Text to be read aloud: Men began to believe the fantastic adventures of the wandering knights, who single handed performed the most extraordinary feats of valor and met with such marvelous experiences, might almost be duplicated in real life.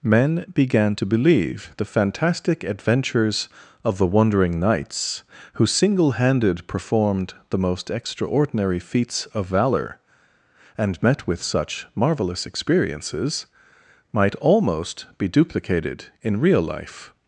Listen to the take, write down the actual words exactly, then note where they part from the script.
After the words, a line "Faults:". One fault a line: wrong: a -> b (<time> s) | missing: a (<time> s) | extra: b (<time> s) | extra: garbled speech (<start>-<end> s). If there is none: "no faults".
Men began to believe the fantastic adventures of the wandering knights, who single handed performed the most extraordinary feats of valor and met with such marvelous experiences, might almost be duplicated in real life.
Faults:
no faults